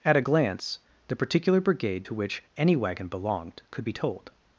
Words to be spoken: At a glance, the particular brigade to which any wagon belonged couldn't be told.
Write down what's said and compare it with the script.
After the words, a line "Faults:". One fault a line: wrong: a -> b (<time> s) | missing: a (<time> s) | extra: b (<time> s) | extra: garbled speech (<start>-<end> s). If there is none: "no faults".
At a glance, the particular brigade to which any wagon belonged could be told.
Faults:
wrong: couldn't -> could (3.7 s)